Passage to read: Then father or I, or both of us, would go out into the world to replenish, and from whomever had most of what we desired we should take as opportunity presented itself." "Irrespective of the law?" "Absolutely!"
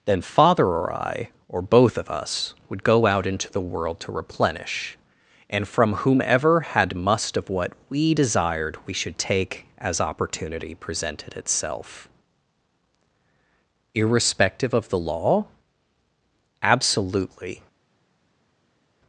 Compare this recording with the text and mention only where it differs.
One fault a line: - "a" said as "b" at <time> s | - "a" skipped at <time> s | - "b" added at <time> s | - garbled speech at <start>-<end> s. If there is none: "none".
- "most" said as "must" at 7.0 s